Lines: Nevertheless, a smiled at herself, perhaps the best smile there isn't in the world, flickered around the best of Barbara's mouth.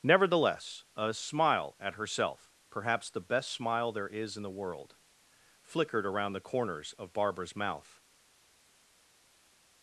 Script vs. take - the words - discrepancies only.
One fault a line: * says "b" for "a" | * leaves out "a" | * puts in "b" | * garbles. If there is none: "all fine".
* says "smile" for "smiled"
* says "is" for "isn't"
* says "corners" for "best"